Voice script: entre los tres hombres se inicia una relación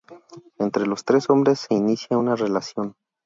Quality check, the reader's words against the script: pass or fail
pass